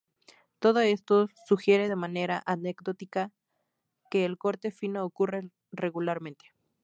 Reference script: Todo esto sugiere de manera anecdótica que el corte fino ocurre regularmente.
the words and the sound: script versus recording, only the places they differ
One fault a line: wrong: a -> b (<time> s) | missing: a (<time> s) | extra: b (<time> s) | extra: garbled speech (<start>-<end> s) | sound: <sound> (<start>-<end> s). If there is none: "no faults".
no faults